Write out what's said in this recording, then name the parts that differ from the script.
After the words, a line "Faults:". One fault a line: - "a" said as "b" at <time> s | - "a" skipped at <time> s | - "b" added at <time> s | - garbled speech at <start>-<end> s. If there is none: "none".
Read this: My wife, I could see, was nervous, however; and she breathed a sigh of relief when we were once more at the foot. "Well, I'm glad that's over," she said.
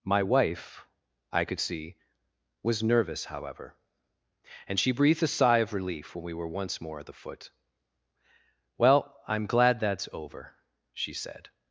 My wife, I could see, was nervous, however; and she breathed a sigh of relief when we were once more at the foot. "Well, I'm glad that's over," she said.
Faults:
none